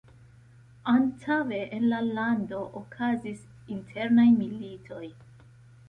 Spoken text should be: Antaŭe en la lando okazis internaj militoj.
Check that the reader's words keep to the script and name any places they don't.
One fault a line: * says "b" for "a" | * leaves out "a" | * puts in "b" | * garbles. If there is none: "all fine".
all fine